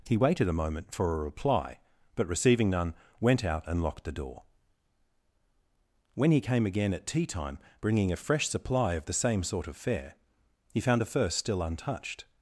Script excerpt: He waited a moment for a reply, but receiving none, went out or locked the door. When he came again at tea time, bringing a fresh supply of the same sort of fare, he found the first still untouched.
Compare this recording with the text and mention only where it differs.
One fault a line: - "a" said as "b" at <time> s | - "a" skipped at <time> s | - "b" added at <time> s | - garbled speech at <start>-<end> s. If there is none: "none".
- "or" said as "and" at 3.7 s